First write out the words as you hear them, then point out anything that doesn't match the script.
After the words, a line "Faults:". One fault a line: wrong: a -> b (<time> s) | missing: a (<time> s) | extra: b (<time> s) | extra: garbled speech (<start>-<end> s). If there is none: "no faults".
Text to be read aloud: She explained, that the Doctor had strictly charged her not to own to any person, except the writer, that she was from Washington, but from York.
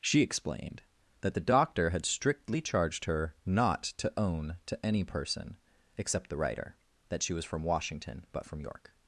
She explained, that the Doctor had strictly charged her not to own to any person, except the writer, that she was from Washington, but from York.
Faults:
no faults